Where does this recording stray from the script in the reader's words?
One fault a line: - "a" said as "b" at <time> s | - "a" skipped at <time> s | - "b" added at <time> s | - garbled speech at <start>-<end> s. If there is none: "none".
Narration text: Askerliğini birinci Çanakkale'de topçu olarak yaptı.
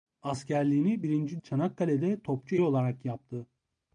none